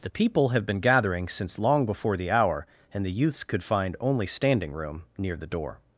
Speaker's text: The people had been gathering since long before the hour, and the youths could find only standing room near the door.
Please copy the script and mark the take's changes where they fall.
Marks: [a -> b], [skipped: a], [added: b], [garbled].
The people [had -> have] been gathering since long before the hour, and the youths could find only standing room near the door.